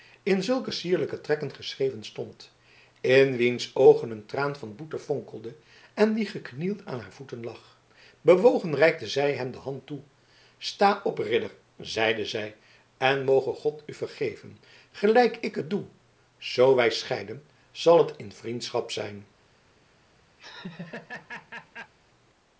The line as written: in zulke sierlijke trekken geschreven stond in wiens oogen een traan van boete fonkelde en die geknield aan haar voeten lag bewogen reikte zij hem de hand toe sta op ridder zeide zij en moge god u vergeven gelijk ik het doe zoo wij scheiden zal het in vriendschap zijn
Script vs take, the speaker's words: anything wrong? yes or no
no